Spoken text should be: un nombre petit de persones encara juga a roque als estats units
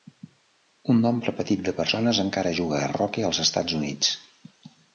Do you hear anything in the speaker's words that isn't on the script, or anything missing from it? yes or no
no